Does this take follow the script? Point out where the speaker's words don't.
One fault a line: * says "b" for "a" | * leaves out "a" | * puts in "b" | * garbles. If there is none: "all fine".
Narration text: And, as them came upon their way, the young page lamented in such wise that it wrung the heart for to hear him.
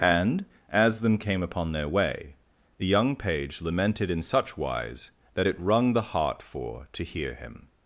all fine